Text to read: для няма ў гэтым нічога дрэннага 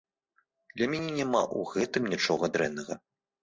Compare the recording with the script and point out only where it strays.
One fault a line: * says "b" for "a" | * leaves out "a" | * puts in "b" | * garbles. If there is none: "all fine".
* puts in "мяне"